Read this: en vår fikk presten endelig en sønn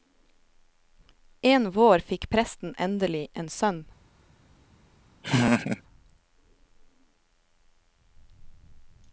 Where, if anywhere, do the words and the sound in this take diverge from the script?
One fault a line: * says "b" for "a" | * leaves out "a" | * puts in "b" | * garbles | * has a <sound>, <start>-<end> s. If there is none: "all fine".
* has a laugh, 5.2-5.8 s